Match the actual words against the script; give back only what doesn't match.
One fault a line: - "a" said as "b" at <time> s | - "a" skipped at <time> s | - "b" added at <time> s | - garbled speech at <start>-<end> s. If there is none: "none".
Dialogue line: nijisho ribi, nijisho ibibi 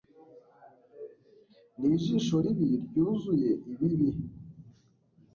- "nijisho" said as "ryuzuye" at 2.8 s